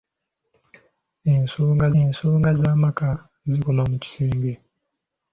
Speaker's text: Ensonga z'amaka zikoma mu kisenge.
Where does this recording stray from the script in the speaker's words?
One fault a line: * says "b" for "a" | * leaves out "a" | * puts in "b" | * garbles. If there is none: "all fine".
* puts in "ensonga"